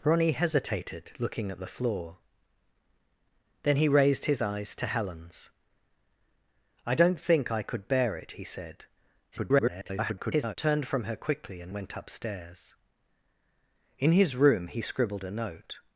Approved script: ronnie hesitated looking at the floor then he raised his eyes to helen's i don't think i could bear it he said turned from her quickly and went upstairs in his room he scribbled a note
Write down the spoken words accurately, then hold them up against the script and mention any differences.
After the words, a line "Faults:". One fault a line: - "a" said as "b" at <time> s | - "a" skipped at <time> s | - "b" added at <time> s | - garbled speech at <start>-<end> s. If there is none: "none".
ronnie hesitated looking at the floor then he raised his eyes to helen's i don't think i could bear it he said [garbled] turned from her quickly and went upstairs in his room he scribbled a note
Faults:
- garbled speech at 9.3-10.6 s